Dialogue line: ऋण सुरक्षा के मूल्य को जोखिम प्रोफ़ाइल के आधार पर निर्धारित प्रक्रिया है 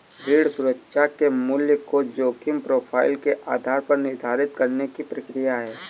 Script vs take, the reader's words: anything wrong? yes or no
yes